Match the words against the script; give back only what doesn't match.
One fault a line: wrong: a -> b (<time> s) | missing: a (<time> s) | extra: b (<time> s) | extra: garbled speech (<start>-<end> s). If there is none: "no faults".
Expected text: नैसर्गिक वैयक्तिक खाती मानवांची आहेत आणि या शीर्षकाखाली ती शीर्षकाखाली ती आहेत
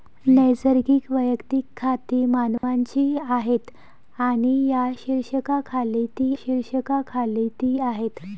no faults